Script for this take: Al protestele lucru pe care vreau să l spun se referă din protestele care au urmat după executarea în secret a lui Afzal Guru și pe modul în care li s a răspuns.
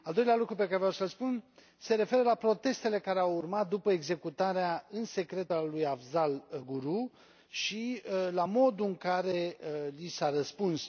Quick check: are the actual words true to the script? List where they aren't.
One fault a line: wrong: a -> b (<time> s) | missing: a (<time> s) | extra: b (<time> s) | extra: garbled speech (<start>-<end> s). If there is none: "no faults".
wrong: protestele -> doilea (0.1 s)
wrong: din -> la (2.2 s)
wrong: pe -> la (8.3 s)